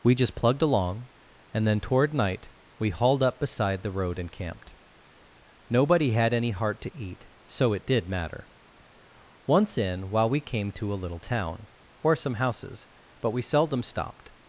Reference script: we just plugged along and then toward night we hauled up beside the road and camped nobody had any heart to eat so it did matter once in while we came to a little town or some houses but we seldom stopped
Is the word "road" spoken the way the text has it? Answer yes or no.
yes